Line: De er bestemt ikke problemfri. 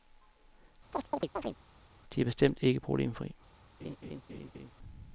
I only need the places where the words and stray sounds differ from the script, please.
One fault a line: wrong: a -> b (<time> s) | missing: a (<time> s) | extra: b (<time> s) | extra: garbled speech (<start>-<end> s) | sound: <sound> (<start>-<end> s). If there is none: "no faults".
sound: chirp (0.9-1.6 s)
sound: laugh (3.8-4.7 s)